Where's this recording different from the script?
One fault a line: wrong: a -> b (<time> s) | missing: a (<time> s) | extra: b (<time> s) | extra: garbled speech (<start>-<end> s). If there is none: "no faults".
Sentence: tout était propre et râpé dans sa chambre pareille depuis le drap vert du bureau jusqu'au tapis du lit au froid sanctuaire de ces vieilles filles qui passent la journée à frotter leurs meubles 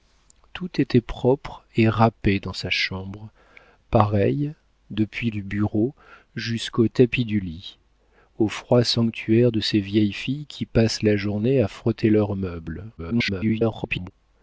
missing: le drap vert (5.3 s)
extra: garbled speech (13.0-14.1 s)